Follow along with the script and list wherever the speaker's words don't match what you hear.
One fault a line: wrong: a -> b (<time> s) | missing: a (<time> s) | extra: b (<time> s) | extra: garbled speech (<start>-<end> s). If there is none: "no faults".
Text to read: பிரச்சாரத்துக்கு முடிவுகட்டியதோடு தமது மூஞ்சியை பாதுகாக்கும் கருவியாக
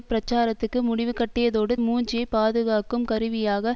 missing: தமது (1.8 s)